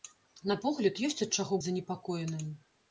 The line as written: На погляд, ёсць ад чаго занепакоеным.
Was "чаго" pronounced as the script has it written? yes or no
yes